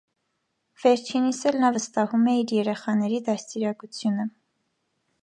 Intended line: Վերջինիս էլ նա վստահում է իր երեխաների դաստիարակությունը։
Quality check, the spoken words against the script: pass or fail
pass